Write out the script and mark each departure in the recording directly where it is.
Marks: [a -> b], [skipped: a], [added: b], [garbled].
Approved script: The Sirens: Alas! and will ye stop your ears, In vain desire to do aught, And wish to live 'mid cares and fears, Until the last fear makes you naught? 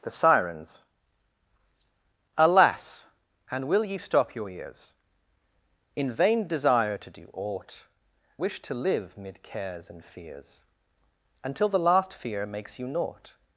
The Sirens: Alas! and will ye stop your ears, In vain desire to do aught, [skipped: And] wish to live 'mid cares and fears, Until the last fear makes you naught?